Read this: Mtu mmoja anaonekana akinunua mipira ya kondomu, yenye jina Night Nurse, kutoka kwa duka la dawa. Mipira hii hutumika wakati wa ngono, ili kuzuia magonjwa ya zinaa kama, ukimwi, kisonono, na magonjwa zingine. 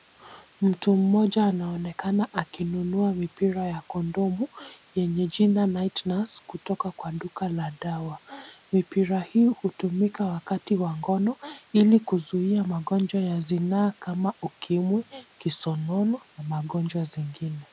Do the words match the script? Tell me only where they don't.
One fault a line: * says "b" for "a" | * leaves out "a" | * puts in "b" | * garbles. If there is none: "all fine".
all fine